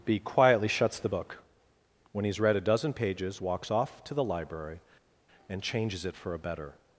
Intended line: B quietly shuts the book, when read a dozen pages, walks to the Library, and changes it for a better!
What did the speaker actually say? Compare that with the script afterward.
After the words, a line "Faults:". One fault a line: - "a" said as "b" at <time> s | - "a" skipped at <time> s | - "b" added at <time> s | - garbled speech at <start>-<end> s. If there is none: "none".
B quietly shuts the book, when he's read a dozen pages, walks off to the Library, and changes it for a better!
Faults:
- "he's" added at 2.2 s
- "off" added at 3.7 s